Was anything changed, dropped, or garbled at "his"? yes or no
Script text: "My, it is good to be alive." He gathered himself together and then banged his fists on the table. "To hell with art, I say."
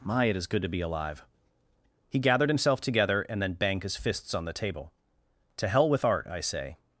no